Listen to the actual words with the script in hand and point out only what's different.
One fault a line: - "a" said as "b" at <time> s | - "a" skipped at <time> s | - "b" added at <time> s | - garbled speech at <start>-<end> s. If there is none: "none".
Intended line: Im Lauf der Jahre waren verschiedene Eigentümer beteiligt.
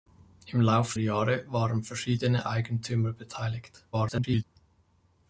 - "der" skipped at 0.9 s
- garbled speech at 3.9-4.4 s